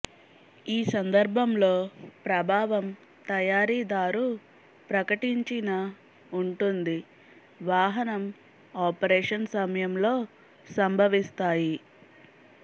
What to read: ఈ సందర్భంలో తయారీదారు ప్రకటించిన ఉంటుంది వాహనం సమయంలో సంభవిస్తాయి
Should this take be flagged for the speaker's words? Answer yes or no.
yes